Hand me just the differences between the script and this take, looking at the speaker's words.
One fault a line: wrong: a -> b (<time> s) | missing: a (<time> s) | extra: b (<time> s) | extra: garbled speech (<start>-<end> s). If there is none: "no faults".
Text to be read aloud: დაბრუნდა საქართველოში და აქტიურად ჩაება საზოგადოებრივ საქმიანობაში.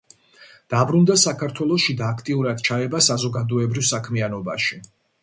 no faults